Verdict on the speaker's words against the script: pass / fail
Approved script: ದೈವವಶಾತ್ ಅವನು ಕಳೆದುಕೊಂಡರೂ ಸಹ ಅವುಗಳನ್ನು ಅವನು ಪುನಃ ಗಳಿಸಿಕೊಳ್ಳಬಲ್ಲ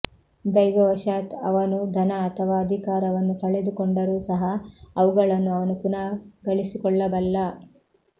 fail